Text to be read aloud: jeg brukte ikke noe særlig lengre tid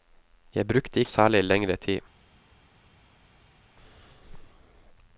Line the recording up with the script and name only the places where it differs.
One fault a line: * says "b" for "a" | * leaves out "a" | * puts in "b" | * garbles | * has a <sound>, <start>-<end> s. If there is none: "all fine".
* leaves out "ikke noe"